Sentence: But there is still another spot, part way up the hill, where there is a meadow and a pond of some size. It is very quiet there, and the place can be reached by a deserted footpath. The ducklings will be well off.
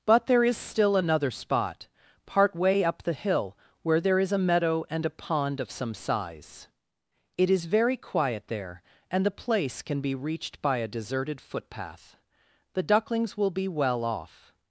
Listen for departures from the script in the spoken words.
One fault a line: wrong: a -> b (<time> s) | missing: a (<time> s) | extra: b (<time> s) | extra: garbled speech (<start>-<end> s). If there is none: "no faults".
no faults